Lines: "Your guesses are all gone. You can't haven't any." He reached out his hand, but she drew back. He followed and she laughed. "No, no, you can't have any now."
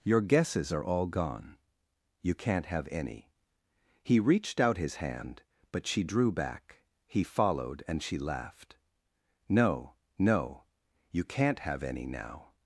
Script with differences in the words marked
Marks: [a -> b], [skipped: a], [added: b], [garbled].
"Your guesses are all gone. You can't [haven't -> have] any." He reached out his hand, but she drew back. He followed and she laughed. "No, no, you can't have any now."